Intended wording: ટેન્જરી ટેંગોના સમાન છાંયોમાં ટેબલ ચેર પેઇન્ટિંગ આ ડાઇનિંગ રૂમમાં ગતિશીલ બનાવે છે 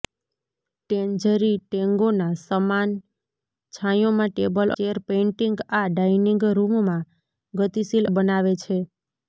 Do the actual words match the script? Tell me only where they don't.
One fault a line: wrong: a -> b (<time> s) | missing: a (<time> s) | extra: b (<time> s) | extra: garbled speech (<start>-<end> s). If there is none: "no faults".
no faults